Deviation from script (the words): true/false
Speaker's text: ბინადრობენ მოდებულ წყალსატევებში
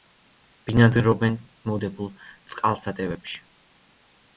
false